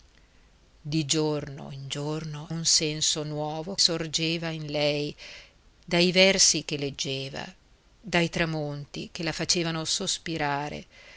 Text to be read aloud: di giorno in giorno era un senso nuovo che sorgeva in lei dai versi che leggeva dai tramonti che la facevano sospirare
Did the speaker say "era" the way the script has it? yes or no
no